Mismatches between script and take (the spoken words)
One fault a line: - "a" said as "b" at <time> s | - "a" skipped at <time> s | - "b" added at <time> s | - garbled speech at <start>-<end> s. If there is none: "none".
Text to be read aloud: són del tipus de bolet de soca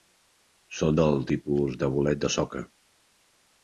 none